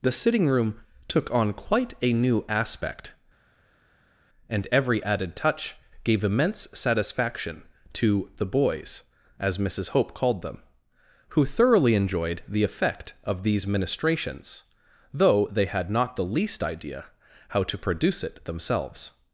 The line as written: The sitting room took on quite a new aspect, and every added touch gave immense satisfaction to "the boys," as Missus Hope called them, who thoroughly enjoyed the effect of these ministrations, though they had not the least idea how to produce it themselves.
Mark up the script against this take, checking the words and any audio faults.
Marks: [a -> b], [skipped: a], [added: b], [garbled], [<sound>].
The sitting room took on quite a new aspect, and every added touch gave immense satisfaction to "the boys," as Missus Hope called them, who thoroughly enjoyed the effect of these ministrations, though they had not the least idea how to produce it themselves.